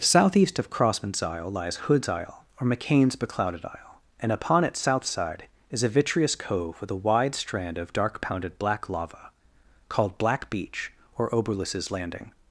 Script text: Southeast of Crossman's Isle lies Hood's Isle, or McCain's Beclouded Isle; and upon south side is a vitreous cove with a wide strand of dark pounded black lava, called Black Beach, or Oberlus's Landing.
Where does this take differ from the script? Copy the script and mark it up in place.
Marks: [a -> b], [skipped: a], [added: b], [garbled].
Southeast of Crossman's Isle lies Hood's Isle, or McCain's Beclouded Isle; and upon [added: its] south side is a vitreous cove with a wide strand of dark pounded black lava, called Black Beach, or Oberlus's Landing.